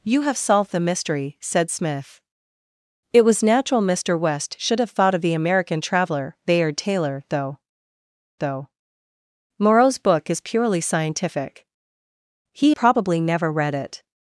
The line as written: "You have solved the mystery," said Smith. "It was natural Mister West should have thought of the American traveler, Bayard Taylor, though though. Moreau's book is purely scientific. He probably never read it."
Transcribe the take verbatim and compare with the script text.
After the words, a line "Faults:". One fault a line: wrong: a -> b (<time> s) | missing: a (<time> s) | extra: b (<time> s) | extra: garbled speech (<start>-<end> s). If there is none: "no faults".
"You have solved the mystery," said Smith. "It was natural Mister West should have thought of the American traveler, Bayard Taylor, though though. Moreau's book is purely scientific. He probably never read it."
Faults:
no faults